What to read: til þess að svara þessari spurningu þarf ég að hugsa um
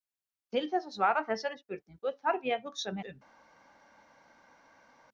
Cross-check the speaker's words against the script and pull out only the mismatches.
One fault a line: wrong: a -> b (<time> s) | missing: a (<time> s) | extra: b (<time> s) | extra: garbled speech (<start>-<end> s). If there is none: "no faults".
no faults